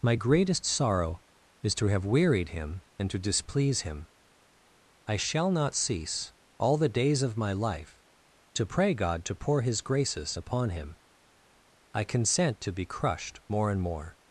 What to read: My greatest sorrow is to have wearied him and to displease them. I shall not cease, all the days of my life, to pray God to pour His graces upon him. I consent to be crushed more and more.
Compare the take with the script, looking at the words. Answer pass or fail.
fail